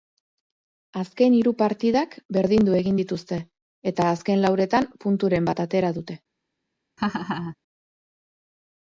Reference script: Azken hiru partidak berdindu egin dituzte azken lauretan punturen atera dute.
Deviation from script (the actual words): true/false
true